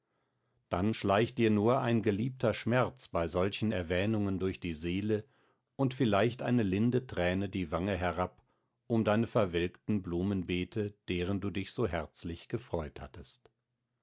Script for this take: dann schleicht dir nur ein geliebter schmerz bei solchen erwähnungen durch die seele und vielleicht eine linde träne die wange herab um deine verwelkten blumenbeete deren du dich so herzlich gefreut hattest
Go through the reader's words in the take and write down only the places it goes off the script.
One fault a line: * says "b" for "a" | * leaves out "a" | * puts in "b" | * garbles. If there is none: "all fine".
all fine